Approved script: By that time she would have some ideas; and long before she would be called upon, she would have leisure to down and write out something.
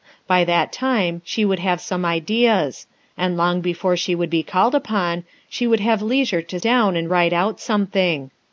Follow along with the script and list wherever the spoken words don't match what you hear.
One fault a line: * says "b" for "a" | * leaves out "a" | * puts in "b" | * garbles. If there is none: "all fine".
all fine